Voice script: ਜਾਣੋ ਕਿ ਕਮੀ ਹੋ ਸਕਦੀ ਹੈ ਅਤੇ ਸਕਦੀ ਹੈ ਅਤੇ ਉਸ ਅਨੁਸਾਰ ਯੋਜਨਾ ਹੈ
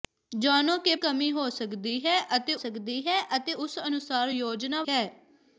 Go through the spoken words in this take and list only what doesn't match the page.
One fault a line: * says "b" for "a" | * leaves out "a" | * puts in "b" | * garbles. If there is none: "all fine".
all fine